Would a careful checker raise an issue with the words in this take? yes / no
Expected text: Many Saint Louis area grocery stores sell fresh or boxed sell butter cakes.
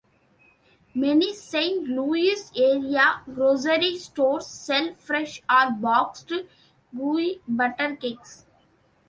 yes